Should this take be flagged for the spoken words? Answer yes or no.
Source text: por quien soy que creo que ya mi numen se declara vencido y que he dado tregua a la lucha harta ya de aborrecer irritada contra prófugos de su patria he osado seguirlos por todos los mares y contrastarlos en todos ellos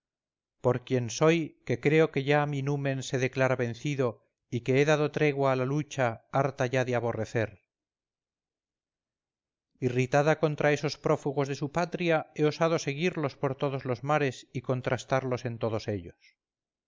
yes